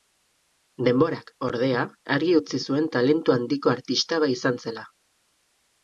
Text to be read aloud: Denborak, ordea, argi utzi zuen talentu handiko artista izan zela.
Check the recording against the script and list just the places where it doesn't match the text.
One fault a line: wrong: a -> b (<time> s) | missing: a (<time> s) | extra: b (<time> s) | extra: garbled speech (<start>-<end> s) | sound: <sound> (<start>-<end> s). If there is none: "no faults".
no faults